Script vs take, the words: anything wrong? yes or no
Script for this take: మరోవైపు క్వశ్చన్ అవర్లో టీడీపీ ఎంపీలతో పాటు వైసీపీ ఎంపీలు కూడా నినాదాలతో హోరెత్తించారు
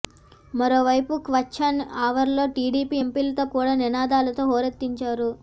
yes